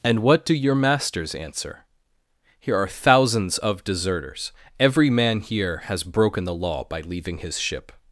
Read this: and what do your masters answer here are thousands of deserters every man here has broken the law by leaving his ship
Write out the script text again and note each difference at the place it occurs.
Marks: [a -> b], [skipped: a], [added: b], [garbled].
and what do your masters answer here are thousands of deserters every man here has broken the law by leaving his ship